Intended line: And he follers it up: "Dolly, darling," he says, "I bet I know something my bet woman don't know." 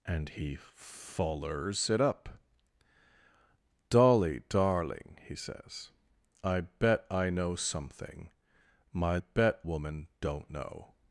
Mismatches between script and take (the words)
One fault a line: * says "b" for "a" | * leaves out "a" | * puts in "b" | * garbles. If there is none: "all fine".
all fine